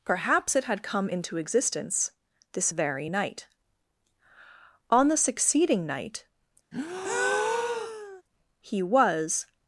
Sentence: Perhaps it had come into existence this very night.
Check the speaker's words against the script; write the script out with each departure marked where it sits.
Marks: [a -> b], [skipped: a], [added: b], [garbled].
Perhaps it had come into existence this very night. [added: On the succeeding night he was]